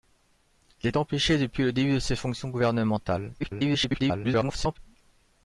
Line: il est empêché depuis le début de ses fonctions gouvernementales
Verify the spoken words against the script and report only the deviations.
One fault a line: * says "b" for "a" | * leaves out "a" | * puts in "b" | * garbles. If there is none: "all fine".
* garbles